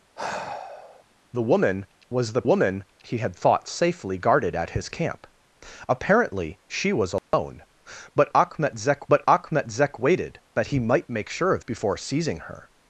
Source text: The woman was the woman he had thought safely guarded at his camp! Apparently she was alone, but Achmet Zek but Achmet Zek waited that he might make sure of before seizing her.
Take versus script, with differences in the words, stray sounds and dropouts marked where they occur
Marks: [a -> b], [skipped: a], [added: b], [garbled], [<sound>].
[sigh] The woman was the woman he had thought safely guarded at his camp! Apparently she was alone, [dropout] but Achmet Zek but Achmet Zek waited that he might make sure of before seizing her.